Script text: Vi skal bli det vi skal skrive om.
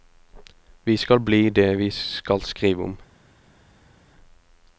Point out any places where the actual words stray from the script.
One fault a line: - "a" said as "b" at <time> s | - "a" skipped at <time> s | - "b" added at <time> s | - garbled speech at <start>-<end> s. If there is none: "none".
none